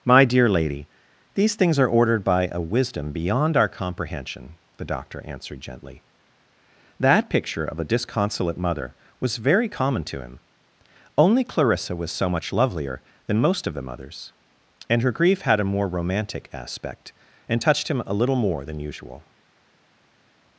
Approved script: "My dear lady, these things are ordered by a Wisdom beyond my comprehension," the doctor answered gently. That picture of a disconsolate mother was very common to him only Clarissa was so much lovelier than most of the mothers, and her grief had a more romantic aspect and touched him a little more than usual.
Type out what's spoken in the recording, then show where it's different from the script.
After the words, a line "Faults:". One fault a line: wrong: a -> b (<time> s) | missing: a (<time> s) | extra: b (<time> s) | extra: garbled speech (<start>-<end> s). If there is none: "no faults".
"My dear lady, these things are ordered by a Wisdom beyond our comprehension," the doctor answered gently. That picture of a disconsolate mother was very common to him only Clarissa was so much lovelier than most of the mothers, and her grief had a more romantic aspect and touched him a little more than usual.
Faults:
wrong: my -> our (3.5 s)